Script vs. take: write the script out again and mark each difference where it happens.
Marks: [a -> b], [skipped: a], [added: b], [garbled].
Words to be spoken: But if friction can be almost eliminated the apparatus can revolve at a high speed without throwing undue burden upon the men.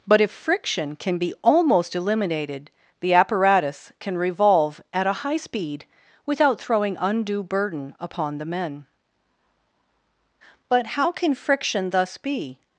But if friction can be almost eliminated the apparatus can revolve at a high speed without throwing undue burden upon the men. [added: But how can friction thus be]